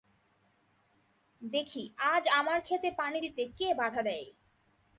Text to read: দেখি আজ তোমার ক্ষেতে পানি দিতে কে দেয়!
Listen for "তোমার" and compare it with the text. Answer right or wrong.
wrong